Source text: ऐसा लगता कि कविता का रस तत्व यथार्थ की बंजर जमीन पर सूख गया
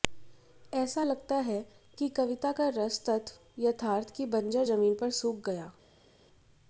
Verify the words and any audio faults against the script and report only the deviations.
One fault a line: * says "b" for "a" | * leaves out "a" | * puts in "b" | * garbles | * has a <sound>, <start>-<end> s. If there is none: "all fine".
* puts in "है"